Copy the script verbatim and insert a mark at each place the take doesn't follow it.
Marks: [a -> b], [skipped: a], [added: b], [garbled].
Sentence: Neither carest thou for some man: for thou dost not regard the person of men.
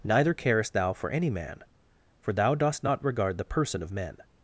Neither carest thou for [some -> any] man: for thou dost not regard the person of men.